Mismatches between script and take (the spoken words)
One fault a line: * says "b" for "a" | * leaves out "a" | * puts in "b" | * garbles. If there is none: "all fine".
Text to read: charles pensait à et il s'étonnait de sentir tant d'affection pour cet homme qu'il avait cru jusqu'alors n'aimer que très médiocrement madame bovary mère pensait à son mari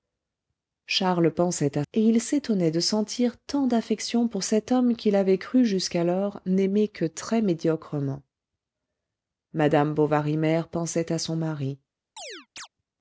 all fine